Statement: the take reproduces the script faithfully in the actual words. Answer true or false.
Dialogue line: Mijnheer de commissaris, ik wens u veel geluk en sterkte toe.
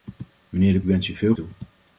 false